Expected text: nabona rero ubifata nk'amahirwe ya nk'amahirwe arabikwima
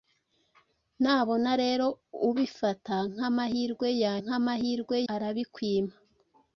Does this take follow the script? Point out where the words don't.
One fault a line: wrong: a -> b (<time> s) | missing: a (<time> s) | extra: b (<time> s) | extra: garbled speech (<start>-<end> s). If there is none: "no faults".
no faults